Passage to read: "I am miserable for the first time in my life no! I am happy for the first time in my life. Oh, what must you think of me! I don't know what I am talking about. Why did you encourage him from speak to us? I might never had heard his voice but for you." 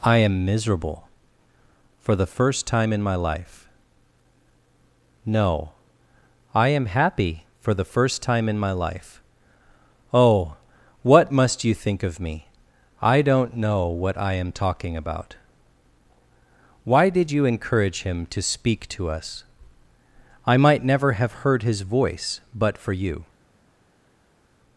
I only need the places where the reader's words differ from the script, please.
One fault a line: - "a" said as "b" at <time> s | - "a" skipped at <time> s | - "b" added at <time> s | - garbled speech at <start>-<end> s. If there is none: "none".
- "from" said as "to" at 18.3 s
- "had" said as "have" at 21.1 s